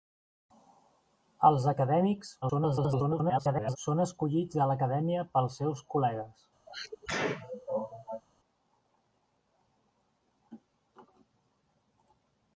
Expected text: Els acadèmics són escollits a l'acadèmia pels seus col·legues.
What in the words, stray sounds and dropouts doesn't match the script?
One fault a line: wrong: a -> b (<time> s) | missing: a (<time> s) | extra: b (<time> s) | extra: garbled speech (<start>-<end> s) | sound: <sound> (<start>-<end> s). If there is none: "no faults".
extra: garbled speech (2.4-3.8 s)
sound: sneeze (6.7-8.2 s)